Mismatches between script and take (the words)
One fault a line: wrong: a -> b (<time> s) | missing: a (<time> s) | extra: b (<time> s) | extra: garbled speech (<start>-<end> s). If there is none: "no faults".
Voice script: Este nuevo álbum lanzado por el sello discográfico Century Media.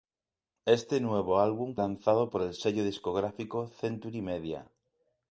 no faults